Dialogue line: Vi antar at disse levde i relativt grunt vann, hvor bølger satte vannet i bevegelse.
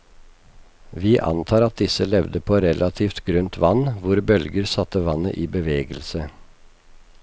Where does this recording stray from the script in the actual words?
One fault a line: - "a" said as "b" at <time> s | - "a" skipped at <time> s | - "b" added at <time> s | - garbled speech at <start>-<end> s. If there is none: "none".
- "i" said as "på" at 2.5 s